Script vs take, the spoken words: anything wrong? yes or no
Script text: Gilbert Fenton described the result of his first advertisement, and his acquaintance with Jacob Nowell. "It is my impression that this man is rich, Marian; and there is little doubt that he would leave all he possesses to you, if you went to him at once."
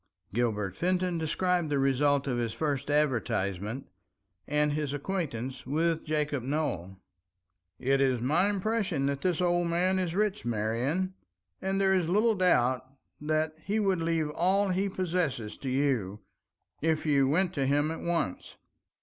yes